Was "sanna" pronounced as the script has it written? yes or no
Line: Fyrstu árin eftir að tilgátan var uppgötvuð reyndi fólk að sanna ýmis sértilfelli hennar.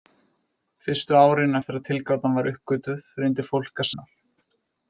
no